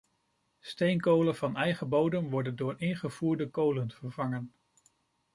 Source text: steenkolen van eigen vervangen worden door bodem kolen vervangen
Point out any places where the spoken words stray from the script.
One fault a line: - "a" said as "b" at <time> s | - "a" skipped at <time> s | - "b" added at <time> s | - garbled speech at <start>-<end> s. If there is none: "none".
- "vervangen" said as "bodem" at 1.9 s
- "bodem" said as "ingevoerde" at 2.8 s